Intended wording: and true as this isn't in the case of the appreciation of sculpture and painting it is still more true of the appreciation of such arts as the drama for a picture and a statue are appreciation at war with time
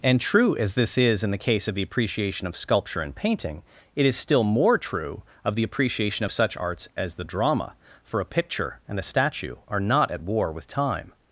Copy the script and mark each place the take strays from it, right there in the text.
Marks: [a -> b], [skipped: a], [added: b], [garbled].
and true as this [isn't -> is] in the case of the appreciation of sculpture and painting it is still more true of the appreciation of such arts as the drama for a picture and a statue are [appreciation -> not] at war with time